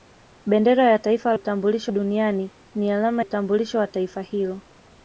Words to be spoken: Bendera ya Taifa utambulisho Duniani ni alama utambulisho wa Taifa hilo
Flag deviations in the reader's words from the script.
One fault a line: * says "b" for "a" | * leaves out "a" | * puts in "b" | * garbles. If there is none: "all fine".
all fine